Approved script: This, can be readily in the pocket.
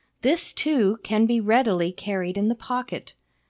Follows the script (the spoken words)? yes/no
no